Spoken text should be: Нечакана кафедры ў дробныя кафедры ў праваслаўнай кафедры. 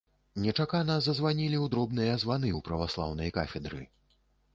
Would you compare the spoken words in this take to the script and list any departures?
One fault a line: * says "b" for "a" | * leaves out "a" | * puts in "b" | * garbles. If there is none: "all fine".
* says "зазванілі" for "кафедры"
* says "званы" for "кафедры"